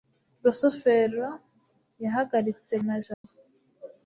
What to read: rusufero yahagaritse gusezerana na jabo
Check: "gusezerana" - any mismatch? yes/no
yes